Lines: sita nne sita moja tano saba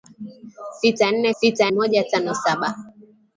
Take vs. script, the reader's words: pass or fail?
pass